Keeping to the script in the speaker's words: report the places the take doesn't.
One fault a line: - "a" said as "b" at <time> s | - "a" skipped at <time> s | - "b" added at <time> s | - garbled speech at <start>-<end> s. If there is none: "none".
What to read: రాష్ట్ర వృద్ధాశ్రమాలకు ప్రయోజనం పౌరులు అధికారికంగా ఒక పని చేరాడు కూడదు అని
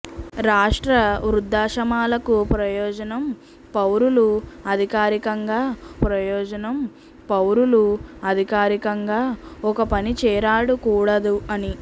- "ప్రయోజనం పౌరులు అధికారికంగా" added at 6.0 s